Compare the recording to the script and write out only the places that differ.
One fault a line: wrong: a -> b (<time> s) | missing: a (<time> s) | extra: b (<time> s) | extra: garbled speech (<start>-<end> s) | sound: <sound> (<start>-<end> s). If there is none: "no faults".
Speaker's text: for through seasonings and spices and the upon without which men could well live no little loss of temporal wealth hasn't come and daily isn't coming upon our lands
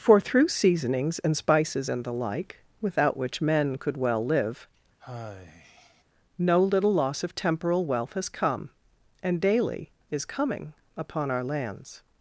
wrong: upon -> like (2.1 s)
sound: sigh (5.0-6.0 s)
wrong: hasn't -> has (8.1 s)
wrong: isn't -> is (10.1 s)